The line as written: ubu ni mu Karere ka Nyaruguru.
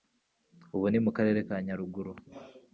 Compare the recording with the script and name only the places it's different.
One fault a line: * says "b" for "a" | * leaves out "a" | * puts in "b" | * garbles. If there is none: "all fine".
all fine